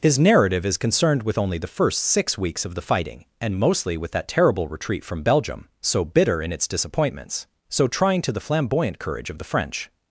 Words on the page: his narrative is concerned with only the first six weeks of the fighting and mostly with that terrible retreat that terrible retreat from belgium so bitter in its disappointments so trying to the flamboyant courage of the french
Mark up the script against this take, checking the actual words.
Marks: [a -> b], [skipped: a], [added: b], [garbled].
his narrative is concerned with only the first six weeks of the fighting and mostly with that terrible retreat [skipped: that terrible retreat] from belgium so bitter in its disappointments so trying to the flamboyant courage of the french